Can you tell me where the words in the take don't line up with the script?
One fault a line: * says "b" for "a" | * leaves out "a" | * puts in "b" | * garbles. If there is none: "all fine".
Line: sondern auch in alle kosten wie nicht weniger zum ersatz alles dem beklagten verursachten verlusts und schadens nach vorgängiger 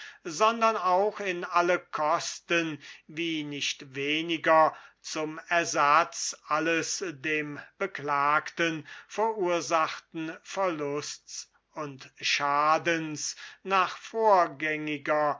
all fine